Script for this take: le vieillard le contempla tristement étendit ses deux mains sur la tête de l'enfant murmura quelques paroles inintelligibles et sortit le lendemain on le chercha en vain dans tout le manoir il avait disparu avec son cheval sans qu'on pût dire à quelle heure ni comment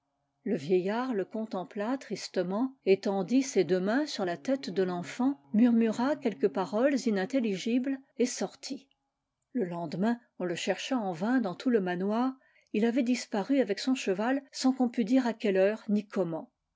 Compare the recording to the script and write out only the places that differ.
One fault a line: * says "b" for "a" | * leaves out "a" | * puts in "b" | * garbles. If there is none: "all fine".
all fine